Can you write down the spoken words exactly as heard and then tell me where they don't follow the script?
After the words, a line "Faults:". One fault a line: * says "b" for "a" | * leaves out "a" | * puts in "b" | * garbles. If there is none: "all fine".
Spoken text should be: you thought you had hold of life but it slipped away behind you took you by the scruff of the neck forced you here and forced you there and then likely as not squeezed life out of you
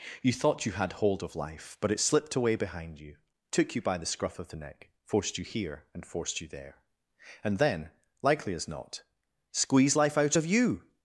you thought you had hold of life but it slipped away behind you took you by the scruff of the neck forced you here and forced you there and then likely as not squeeze life out of you
Faults:
* says "squeeze" for "squeezed"